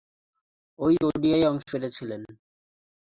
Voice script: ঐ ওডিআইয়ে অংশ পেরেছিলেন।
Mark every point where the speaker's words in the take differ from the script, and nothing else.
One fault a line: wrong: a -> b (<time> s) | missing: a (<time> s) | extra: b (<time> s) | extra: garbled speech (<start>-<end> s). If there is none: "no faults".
no faults